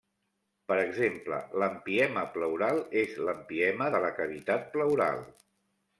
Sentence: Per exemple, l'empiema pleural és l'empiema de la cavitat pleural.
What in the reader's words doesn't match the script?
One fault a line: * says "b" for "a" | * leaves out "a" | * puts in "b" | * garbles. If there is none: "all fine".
all fine